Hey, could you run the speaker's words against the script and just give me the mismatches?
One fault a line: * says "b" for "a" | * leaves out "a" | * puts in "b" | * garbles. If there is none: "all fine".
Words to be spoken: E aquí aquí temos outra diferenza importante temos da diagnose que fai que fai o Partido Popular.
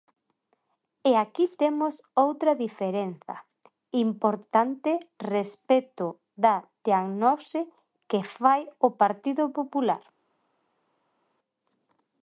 * leaves out "aquí"
* says "respecto" for "temos"
* leaves out "que fai"